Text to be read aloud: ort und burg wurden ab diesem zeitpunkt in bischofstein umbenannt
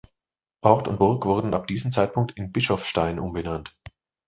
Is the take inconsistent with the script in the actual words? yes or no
no